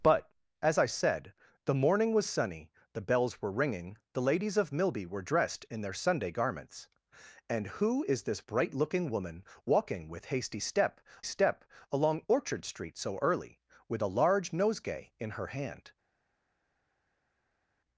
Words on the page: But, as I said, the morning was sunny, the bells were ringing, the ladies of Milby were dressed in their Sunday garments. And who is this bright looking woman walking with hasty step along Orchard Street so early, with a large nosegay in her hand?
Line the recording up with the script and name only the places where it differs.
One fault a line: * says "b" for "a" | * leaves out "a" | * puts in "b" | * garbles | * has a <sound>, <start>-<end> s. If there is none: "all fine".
* puts in "step"